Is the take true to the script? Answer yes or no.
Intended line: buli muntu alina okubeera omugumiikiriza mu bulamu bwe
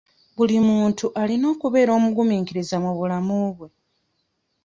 yes